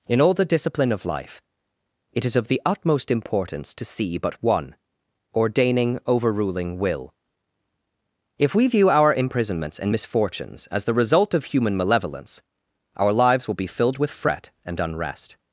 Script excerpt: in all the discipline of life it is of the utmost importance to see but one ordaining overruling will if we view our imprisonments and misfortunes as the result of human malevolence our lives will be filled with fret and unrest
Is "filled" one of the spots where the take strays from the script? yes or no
no